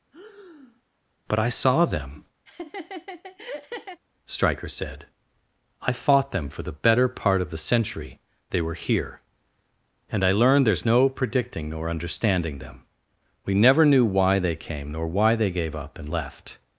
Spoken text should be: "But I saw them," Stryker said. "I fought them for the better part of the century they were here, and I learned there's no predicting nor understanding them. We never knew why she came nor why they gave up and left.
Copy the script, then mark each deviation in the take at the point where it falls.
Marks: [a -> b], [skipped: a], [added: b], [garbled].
"But I saw them," Stryker said. "I fought them for the better part of the century they were here, and I learned there's no predicting nor understanding them. We never knew why [she -> they] came nor why they gave up and left.